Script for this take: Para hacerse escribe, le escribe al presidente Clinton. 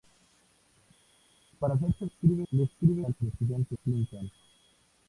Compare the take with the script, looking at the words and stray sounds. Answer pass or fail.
pass